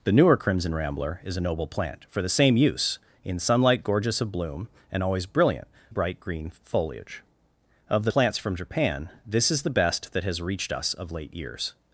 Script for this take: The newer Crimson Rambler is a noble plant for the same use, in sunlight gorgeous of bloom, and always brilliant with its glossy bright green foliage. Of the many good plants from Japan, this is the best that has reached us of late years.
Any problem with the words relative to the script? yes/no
yes